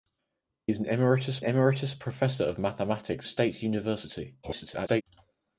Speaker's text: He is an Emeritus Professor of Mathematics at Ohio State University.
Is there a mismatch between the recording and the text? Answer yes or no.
yes